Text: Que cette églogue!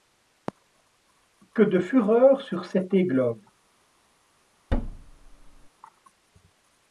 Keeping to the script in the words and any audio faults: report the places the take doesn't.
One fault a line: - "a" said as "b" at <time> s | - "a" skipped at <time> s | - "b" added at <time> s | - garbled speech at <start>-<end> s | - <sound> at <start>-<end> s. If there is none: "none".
- "de fureur sur" added at 1.6 s
- thud at 4.7-5.7 s